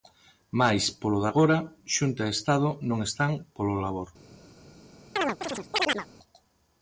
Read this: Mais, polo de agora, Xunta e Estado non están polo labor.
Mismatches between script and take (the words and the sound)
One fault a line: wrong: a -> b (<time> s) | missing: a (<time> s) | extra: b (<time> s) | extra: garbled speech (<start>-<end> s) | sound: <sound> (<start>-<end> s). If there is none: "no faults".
sound: chirp (5.2-6.1 s)